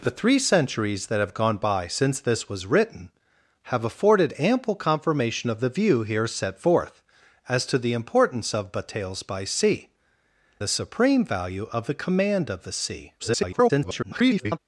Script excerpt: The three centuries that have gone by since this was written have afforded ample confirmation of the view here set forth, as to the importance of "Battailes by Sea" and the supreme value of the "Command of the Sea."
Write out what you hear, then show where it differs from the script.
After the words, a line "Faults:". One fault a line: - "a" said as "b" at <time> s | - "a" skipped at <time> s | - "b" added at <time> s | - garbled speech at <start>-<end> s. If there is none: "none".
The three centuries that have gone by since this was written have afforded ample confirmation of the view here set forth, as to the importance of "Battailes by Sea" the supreme value of the "Command of the Sea." [garbled]
Faults:
- "and" skipped at 9.9 s
- garbled speech at 13.2-14.6 s